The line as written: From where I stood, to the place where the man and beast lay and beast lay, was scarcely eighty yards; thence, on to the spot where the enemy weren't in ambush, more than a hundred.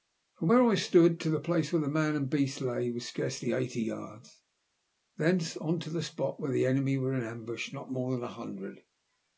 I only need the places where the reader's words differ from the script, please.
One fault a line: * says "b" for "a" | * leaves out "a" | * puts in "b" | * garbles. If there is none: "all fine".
* leaves out "and beast lay"
* says "were" for "weren't"
* puts in "not"